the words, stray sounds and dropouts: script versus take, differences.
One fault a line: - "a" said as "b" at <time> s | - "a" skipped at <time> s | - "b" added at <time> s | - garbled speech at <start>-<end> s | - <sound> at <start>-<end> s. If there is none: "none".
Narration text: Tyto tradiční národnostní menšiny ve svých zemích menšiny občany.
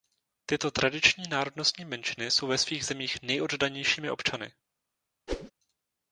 - "jsou" added at 2.3 s
- "menšiny" said as "nejoddanějšími" at 3.2 s
- whoosh at 5.3-5.5 s